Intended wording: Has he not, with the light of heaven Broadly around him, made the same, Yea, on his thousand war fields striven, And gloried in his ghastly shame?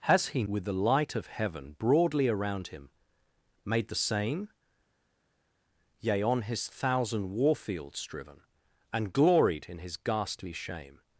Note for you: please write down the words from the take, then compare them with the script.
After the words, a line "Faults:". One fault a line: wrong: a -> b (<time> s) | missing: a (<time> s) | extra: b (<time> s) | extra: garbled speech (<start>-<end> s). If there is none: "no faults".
Has he with the light of heaven Broadly around him, made the same, Yea, on his thousand war fields striven, And gloried in his ghastly shame?
Faults:
missing: not (0.4 s)